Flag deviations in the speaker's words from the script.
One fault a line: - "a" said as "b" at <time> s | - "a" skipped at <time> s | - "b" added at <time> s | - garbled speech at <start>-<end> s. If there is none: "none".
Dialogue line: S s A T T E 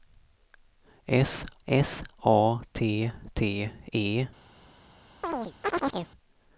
none